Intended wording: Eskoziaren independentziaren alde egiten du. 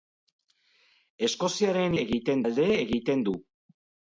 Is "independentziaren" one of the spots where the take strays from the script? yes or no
yes